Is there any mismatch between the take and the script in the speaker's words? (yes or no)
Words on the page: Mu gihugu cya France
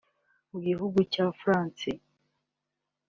no